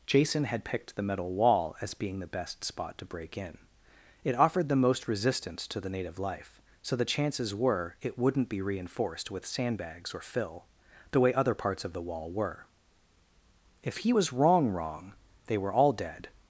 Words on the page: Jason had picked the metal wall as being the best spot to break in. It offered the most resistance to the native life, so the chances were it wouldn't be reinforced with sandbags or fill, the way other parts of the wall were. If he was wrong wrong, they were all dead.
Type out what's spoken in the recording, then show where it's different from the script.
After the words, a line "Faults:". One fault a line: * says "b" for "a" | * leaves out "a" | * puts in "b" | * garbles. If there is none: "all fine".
Jason had picked the metal wall as being the best spot to break in. It offered the most resistance to the native life, so the chances were it wouldn't be reinforced with sandbags or fill, the way other parts of the wall were. If he was wrong wrong, they were all dead.
Faults:
all fine